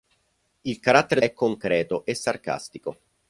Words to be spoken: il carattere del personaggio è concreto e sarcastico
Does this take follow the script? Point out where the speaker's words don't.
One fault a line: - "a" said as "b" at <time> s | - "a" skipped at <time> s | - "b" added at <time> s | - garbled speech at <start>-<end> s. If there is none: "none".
- "del personaggio" skipped at 1.2 s